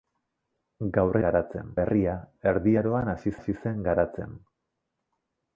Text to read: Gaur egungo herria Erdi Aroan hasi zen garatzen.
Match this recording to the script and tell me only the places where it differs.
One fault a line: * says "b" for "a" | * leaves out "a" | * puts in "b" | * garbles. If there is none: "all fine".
* says "garatzen" for "egungo"
* puts in "hasi"